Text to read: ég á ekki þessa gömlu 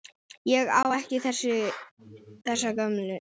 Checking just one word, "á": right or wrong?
right